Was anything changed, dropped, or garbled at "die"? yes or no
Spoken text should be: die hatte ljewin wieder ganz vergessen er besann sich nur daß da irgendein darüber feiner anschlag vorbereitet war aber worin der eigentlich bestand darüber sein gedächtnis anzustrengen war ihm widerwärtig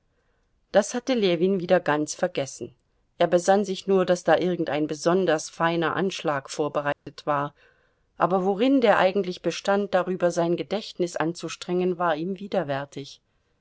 yes